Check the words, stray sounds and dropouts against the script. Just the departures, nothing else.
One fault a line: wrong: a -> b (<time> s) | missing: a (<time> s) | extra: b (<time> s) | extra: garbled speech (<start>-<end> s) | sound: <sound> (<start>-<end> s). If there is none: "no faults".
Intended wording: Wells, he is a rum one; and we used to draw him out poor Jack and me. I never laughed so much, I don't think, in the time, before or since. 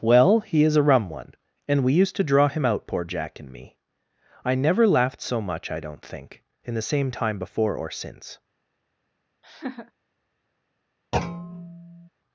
wrong: Wells -> Well (0.0 s)
extra: same (6.8 s)
sound: laugh (9.4-9.9 s)
sound: thud (11.1-12.1 s)